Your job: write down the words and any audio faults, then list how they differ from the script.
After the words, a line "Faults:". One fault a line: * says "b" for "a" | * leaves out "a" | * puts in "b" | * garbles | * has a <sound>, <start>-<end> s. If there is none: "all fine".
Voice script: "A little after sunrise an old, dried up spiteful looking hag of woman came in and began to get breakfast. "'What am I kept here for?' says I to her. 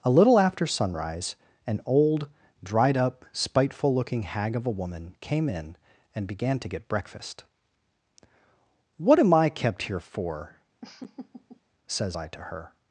"A little after sunrise an old, dried up spiteful looking hag of a woman came in and began to get breakfast. "'What am I kept here for?' says I to her.
Faults:
* puts in "a"
* has a laugh, 10.8-11.6 s